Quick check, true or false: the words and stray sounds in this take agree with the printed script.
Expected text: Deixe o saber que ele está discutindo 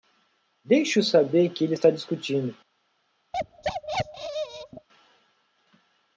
false